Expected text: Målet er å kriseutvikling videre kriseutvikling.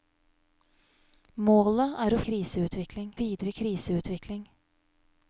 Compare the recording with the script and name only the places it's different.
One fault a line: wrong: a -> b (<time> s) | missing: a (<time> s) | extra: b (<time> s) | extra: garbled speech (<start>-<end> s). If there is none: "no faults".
no faults